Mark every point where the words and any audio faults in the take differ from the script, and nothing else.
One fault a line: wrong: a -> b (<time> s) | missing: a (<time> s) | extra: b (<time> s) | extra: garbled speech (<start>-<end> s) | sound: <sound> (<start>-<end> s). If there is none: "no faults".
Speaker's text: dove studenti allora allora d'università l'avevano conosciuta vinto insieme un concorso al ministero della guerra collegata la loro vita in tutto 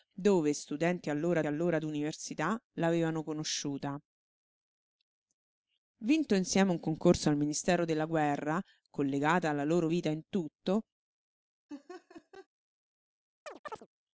sound: laugh (11.7-12.5 s)
sound: chirp (13.5-13.9 s)